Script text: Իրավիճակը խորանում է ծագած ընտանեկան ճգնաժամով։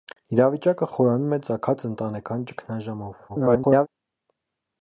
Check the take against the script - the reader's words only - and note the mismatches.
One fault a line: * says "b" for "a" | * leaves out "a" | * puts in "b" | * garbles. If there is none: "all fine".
* garbles